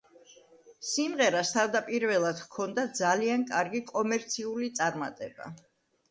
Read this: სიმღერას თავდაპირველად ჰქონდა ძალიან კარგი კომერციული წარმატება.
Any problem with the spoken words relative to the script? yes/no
no